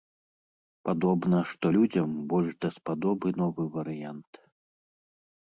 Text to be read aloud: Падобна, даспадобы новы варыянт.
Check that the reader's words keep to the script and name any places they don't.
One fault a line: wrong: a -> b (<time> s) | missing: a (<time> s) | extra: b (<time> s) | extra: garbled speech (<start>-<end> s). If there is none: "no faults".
extra: што людзям больш (1.5 s)